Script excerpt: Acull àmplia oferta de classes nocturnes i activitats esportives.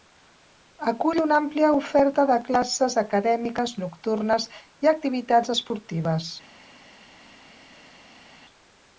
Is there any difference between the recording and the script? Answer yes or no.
yes